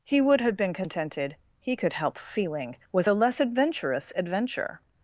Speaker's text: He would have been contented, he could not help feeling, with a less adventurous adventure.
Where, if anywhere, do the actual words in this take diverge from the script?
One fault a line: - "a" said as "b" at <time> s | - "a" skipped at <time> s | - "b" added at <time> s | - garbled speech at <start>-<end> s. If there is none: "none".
- "not" skipped at 1.9 s